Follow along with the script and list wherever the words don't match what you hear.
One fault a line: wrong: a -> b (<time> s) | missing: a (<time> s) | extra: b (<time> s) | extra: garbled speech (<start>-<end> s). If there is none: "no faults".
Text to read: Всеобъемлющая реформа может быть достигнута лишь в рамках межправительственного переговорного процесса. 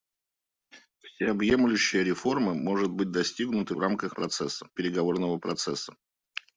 missing: лишь (3.7 s)
wrong: межправительственного -> процесса (4.1 s)